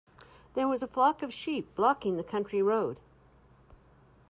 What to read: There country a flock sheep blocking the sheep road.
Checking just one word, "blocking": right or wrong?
right